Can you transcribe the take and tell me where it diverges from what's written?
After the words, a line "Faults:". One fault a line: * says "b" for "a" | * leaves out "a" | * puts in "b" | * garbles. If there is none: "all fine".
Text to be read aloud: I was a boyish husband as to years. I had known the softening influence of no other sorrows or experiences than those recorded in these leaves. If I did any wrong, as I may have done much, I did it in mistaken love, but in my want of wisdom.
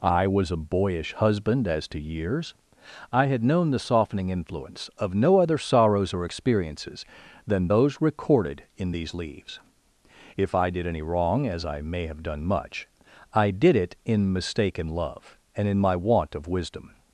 I was a boyish husband as to years. I had known the softening influence of no other sorrows or experiences than those recorded in these leaves. If I did any wrong, as I may have done much, I did it in mistaken love, and in my want of wisdom.
Faults:
* says "and" for "but"